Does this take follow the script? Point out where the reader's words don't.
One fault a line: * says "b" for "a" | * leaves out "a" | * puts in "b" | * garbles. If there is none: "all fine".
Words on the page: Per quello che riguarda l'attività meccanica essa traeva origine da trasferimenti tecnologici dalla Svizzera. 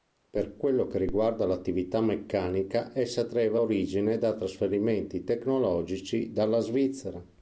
all fine